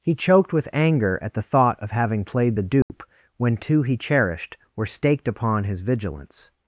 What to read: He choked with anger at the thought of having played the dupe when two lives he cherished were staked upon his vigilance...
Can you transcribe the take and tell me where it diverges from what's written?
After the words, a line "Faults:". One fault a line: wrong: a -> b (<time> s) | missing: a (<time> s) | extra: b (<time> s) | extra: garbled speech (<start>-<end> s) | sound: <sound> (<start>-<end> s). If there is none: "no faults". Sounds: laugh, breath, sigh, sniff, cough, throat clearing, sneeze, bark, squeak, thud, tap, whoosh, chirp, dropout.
He choked with anger at the thought of having played the dupe when two he cherished were staked upon his vigilance...
Faults:
sound: dropout (2.8-2.9 s)
missing: lives (3.8 s)